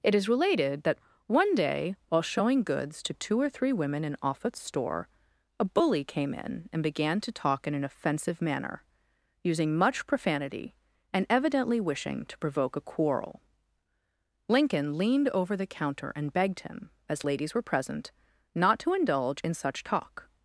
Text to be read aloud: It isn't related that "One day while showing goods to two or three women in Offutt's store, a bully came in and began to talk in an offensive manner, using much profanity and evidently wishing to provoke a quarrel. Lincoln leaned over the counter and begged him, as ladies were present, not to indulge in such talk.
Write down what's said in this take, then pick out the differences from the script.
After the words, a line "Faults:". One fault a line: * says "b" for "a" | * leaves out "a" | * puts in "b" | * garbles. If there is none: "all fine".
It is related that "One day while showing goods to two or three women in Offutt's store, a bully came in and began to talk in an offensive manner, using much profanity and evidently wishing to provoke a quarrel. Lincoln leaned over the counter and begged him, as ladies were present, not to indulge in such talk.
Faults:
* says "is" for "isn't"